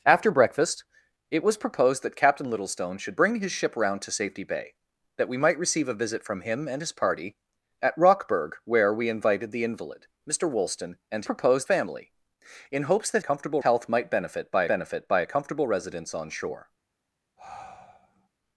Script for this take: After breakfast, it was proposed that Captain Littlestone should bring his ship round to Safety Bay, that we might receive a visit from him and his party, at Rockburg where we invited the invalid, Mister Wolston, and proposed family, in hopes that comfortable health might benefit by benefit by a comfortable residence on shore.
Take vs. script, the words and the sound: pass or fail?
fail